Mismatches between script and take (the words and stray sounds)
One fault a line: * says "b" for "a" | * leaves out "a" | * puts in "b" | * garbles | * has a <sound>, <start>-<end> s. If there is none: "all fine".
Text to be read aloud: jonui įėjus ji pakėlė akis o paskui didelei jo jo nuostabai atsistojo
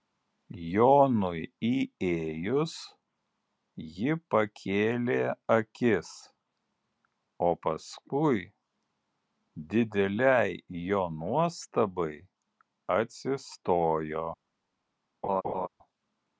* leaves out "jo"
* has a laugh, 15.2-15.7 s